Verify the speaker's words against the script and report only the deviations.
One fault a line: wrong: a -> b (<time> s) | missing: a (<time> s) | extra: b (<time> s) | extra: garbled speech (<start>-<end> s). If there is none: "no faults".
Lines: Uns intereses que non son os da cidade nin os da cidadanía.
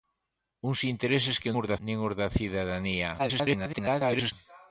missing: non son (1.5 s)
missing: cidade (1.8 s)
extra: garbled speech (3.2-4.3 s)